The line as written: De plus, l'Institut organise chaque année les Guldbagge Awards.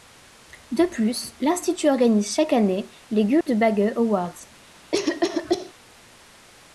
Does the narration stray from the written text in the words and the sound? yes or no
yes